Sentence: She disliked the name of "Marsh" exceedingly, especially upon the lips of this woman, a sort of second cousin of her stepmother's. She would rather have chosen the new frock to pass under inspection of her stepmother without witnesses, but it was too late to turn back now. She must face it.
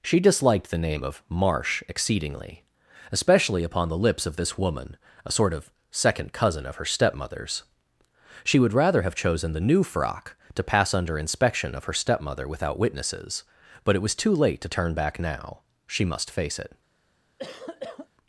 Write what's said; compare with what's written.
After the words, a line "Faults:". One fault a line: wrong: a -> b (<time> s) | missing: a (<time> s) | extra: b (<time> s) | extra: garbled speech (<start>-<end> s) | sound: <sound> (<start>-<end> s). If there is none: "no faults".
She disliked the name of "Marsh" exceedingly, especially upon the lips of this woman, a sort of second cousin of her stepmother's. She would rather have chosen the new frock to pass under inspection of her stepmother without witnesses, but it was too late to turn back now. She must face it.
Faults:
sound: cough (17.4-18.1 s)